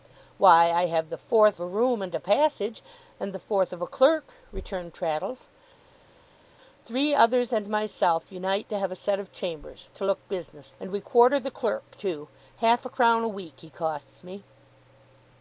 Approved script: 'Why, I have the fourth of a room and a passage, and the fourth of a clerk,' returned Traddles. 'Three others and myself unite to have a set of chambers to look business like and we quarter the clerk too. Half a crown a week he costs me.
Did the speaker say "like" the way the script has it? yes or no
no